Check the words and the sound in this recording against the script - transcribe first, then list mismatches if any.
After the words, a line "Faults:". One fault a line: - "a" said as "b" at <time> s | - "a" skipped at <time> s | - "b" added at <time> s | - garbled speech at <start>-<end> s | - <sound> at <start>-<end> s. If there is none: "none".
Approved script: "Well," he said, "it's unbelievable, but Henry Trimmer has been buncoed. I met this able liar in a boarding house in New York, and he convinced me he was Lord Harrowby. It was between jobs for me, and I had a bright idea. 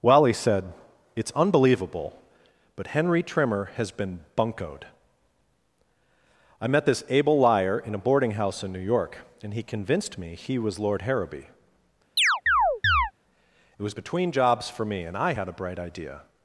"Well," he said, "it's unbelievable, but Henry Trimmer has been buncoed. I met this able liar in a boarding house in New York, and he convinced me he was Lord Harrowby. It was between jobs for me, and I had a bright idea.
Faults:
- chirp at 12.2-13.1 s